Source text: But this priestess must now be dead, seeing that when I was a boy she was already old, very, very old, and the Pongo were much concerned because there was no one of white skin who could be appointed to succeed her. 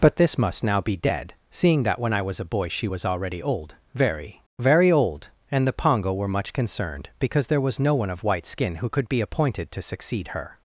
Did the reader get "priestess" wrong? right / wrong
wrong